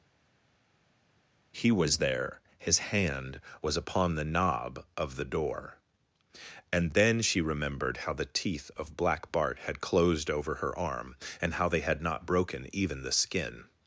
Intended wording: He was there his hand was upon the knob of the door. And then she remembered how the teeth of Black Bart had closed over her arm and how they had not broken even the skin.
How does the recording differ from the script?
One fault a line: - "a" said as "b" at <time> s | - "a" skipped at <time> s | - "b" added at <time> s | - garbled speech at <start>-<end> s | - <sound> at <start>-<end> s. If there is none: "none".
none